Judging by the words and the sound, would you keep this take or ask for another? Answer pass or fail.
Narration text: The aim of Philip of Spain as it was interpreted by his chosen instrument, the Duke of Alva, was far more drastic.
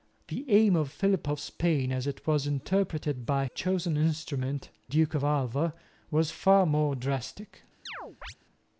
fail